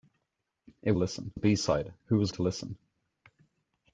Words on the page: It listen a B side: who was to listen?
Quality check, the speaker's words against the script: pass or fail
pass